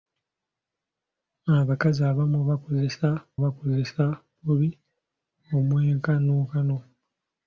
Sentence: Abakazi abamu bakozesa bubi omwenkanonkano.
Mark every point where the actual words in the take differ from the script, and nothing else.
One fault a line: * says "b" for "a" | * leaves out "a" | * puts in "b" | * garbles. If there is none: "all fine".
* puts in "bakozesa"